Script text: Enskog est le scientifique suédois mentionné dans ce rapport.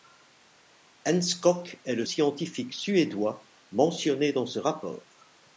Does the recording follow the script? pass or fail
pass